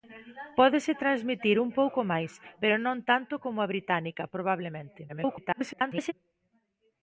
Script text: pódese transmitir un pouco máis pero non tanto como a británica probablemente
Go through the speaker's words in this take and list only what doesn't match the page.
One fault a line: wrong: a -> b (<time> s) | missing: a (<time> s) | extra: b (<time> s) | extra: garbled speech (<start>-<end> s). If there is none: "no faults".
extra: garbled speech (5.1-6.1 s)